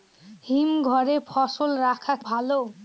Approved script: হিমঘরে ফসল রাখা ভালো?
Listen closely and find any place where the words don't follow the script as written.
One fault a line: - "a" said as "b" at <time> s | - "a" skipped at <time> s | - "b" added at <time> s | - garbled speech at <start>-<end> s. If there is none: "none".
none